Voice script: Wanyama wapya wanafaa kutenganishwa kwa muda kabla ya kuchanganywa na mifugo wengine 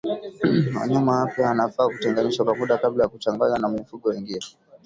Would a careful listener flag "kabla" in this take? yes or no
no